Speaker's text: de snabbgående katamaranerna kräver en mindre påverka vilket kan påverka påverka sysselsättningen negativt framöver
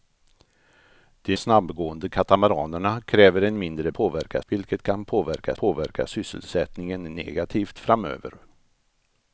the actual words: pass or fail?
pass